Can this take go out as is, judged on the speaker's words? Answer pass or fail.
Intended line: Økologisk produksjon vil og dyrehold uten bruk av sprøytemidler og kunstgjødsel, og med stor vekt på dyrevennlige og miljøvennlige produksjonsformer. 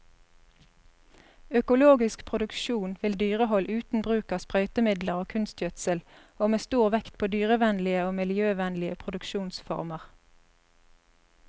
pass